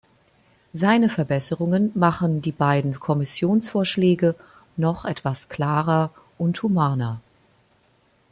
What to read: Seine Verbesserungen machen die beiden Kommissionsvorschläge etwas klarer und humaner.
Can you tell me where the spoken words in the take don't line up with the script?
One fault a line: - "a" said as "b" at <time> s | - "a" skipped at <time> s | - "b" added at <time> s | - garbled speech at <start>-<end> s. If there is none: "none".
- "noch" added at 4.8 s